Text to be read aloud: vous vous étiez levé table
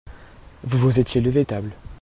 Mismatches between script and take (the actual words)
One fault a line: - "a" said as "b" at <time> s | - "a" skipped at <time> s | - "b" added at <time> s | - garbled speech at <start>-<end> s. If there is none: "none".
none